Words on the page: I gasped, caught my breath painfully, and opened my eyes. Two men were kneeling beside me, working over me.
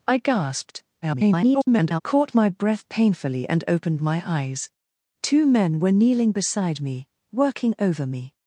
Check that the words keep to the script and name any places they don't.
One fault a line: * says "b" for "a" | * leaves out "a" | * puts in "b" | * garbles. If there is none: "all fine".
* garbles